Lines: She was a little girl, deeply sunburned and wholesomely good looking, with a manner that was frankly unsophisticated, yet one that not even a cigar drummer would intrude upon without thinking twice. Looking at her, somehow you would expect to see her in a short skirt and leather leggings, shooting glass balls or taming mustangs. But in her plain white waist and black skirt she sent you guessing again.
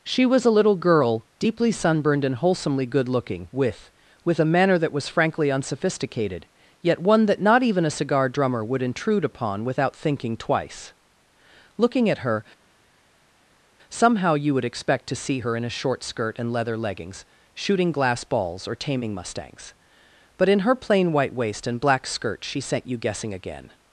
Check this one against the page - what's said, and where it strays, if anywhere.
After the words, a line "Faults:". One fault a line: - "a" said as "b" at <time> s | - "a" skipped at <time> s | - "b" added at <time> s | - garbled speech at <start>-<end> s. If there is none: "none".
She was a little girl, deeply sunburned and wholesomely good looking, with with a manner that was frankly unsophisticated, yet one that not even a cigar drummer would intrude upon without thinking twice. Looking at her, somehow you would expect to see her in a short skirt and leather leggings, shooting glass balls or taming mustangs. But in her plain white waist and black skirt she sent you guessing again.
Faults:
- "with" added at 4.2 s